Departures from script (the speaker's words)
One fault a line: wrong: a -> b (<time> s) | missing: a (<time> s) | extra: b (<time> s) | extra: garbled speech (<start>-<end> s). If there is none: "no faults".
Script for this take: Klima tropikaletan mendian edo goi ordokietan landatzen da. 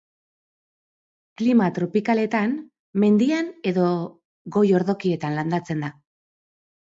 no faults